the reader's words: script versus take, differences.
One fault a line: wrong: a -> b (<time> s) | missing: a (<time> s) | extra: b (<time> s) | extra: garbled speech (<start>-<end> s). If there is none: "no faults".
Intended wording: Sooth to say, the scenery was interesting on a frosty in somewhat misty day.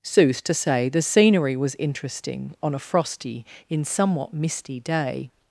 no faults